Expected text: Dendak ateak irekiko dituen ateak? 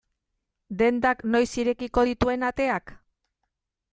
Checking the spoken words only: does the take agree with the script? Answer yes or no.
no